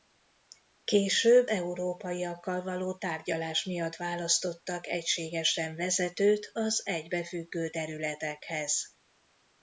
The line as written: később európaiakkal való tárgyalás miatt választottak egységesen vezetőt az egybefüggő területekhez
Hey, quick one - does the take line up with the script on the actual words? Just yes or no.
yes